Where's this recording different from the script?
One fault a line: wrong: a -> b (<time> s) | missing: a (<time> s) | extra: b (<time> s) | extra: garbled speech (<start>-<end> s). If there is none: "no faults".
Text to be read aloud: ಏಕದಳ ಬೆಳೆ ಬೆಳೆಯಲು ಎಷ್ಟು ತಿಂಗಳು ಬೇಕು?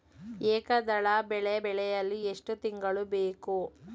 no faults